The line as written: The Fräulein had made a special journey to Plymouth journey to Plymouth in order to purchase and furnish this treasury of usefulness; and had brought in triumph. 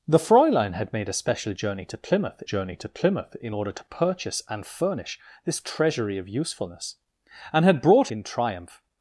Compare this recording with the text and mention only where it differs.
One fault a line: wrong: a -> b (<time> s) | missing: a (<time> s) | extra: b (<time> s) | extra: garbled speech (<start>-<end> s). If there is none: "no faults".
no faults